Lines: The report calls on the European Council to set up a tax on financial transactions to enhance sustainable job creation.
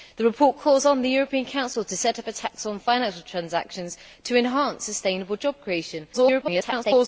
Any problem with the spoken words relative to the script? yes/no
yes